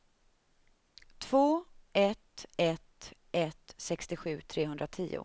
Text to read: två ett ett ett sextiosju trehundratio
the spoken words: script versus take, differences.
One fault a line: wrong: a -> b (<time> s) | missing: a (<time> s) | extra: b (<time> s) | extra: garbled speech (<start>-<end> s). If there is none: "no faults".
no faults